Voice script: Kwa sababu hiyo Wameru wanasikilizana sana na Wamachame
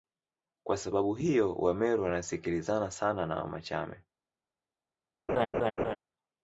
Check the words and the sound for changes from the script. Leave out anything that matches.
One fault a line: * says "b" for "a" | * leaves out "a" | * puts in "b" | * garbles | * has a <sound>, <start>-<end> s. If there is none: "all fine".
* has a laugh, 5.3-6.0 s